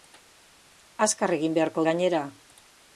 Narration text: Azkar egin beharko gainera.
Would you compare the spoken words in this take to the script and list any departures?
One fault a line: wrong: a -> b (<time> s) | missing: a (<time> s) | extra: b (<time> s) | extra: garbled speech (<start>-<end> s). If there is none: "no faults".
no faults